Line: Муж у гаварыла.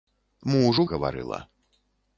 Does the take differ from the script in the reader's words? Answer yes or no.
no